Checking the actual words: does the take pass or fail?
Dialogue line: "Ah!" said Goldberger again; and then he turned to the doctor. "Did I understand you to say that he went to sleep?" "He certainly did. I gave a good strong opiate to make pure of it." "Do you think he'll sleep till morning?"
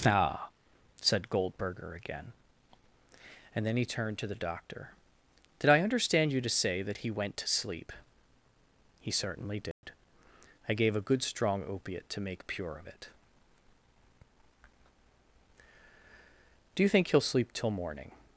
pass